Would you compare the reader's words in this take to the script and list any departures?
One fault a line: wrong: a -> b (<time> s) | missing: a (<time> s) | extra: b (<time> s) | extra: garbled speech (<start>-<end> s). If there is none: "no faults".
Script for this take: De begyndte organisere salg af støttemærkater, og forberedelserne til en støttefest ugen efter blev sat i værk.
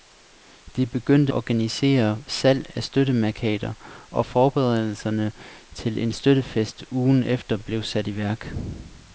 no faults